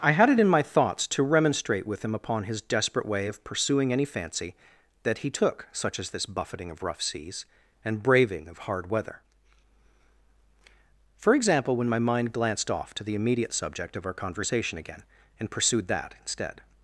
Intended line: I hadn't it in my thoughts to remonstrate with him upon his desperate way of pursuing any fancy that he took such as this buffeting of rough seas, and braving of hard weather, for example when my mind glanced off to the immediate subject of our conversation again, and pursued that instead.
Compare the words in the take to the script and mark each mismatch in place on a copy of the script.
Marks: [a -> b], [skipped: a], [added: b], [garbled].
I [hadn't -> had] it in my thoughts to remonstrate with him upon his desperate way of pursuing any fancy that he took such as this buffeting of rough seas, and braving of hard weather, for example when my mind glanced off to the immediate subject of our conversation again, and pursued that instead.